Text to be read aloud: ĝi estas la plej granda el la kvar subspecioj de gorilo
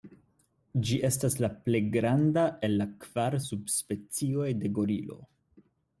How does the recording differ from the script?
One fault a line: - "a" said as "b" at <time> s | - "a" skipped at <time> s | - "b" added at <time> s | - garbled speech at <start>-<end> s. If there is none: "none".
none